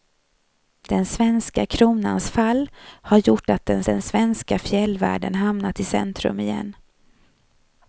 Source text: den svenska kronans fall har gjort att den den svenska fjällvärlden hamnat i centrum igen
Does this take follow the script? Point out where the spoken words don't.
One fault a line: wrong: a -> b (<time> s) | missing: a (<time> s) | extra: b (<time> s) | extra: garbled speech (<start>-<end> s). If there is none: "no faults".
no faults